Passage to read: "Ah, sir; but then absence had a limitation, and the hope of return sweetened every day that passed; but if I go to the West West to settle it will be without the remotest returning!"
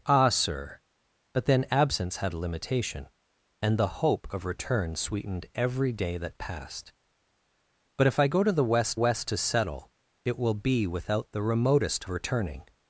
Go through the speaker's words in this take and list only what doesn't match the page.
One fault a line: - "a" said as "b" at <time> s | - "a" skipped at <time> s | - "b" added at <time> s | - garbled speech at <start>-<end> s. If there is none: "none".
none